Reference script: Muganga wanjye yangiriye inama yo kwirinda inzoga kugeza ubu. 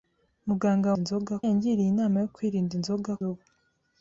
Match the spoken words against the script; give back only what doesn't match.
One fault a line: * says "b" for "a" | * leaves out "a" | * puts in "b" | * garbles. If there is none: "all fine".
* says "inzoga" for "wanjye"
* leaves out "kugeza"